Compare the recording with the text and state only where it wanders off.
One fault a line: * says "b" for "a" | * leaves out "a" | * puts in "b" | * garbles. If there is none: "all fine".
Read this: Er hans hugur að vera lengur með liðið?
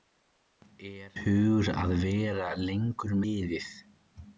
* leaves out "hans"
* leaves out "með"